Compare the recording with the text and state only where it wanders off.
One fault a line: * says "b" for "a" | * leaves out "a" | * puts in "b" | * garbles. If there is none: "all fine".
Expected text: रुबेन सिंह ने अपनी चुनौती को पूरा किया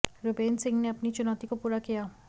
all fine